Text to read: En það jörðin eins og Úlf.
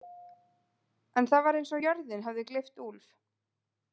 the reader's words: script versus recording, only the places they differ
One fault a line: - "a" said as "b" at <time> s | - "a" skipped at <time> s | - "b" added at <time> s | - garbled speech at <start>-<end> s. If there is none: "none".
- "jörðin" said as "var" at 1.5 s
- "jörðin hefði gleypt" added at 1.9 s